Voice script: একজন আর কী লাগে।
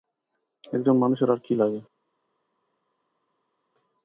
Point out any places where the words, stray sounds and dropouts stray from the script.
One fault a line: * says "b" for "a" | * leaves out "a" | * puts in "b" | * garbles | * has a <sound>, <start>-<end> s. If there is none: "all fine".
* puts in "মানুষের"